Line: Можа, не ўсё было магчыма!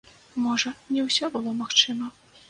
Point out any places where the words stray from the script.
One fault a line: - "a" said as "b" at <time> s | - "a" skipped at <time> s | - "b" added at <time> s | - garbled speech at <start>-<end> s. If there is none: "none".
none